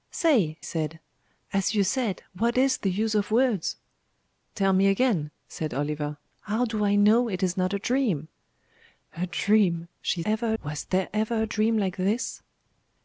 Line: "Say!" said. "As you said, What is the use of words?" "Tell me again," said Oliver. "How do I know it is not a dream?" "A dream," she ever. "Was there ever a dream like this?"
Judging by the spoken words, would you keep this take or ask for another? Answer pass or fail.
pass